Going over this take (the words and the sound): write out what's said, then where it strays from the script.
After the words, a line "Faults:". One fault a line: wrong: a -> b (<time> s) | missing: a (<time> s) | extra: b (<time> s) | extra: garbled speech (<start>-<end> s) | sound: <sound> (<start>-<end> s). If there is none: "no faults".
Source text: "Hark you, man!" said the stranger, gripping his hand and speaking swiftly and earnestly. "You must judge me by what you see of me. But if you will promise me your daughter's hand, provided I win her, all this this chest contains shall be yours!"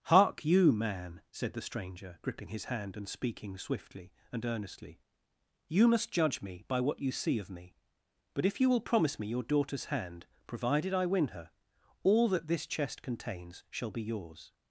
"Hark you, man!" said the stranger, gripping his hand and speaking swiftly and earnestly. "You must judge me by what you see of me. But if you will promise me your daughter's hand, provided I win her, all that this chest contains shall be yours!"
Faults:
wrong: this -> that (12.3 s)